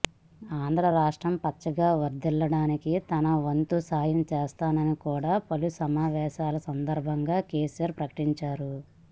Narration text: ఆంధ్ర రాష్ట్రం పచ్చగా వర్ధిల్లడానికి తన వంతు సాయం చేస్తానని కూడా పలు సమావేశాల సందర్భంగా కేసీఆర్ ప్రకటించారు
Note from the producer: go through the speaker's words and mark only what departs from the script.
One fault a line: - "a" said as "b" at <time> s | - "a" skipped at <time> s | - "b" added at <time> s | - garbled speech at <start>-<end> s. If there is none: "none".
none